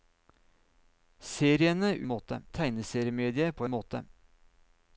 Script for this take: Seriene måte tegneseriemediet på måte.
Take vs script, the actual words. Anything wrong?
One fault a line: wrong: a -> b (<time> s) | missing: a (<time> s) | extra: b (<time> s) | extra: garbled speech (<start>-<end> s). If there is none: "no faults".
no faults